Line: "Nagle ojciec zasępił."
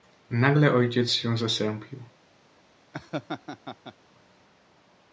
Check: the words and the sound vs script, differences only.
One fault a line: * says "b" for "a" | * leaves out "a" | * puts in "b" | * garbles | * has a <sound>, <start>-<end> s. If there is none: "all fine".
* puts in "się"
* has a laugh, 2.9-4.0 s